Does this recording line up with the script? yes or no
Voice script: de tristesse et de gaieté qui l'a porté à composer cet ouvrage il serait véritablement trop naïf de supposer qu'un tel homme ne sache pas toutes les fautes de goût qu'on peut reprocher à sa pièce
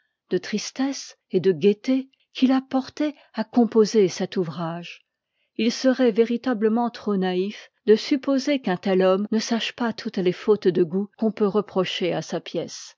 yes